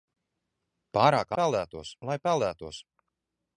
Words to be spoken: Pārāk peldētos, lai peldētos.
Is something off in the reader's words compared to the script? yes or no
no